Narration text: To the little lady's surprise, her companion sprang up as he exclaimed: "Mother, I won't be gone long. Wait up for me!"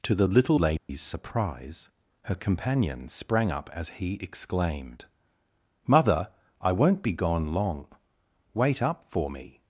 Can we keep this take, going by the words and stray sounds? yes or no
no